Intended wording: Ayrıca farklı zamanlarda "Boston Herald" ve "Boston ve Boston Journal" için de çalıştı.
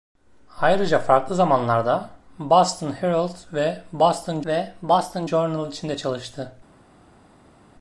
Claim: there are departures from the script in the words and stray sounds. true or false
false